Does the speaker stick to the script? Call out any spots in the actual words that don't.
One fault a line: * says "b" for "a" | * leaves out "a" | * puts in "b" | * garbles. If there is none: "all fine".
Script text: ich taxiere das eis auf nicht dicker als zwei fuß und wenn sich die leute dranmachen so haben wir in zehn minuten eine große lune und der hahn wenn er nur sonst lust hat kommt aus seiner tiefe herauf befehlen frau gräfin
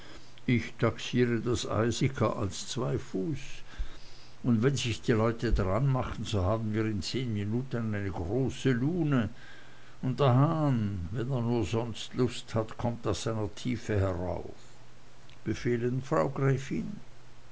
* leaves out "auf nicht"